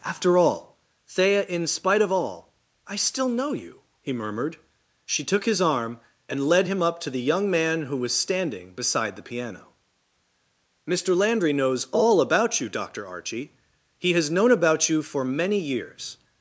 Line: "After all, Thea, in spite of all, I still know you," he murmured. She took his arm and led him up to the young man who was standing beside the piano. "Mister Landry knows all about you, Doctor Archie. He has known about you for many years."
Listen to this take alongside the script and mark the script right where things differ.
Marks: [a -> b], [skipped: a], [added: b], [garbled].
"After all, Thea, in spite of all, I still know you," he murmured. She took his arm and led him up to the young man who was standing beside the piano. "Mister Landry knows all about you, Doctor Archie. He has known about you for many years."